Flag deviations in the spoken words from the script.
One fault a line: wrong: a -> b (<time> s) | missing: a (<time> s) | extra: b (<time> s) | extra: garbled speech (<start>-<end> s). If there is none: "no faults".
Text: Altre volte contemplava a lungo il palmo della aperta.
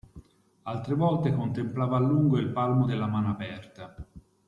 extra: mano (3.1 s)